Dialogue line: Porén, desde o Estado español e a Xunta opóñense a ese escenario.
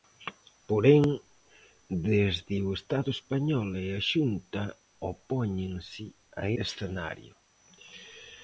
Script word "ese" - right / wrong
wrong